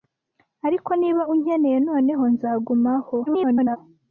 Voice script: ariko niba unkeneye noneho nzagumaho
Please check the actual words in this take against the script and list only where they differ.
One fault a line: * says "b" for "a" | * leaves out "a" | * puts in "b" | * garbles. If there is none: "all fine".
* garbles